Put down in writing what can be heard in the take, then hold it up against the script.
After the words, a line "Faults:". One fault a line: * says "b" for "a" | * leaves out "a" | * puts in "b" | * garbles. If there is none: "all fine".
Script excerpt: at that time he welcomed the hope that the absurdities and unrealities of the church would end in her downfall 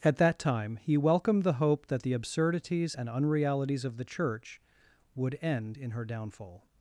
at that time he welcomed the hope that the absurdities and unrealities of the church would end in her downfall
Faults:
all fine